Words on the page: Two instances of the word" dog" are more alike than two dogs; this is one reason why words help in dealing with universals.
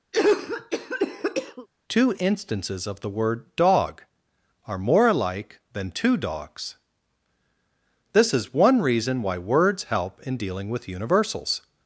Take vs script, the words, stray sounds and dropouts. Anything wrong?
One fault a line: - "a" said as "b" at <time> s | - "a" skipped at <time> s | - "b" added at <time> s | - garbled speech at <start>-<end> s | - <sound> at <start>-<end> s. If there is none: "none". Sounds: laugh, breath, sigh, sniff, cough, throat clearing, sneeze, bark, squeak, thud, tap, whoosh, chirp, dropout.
- cough at 0.1-1.7 s